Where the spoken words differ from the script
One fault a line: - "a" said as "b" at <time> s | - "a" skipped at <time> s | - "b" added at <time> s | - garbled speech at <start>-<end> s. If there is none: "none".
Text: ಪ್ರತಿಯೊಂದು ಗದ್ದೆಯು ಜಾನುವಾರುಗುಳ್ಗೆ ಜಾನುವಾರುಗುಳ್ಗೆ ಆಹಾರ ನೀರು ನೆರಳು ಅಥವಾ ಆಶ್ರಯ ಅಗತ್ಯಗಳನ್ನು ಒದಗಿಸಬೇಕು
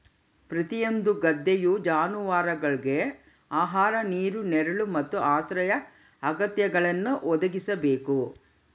- "ಜಾನುವಾರುಗುಳ್ಗೆ" skipped at 3.0 s
- "ಅಥವಾ" said as "ಮತ್ತು" at 5.0 s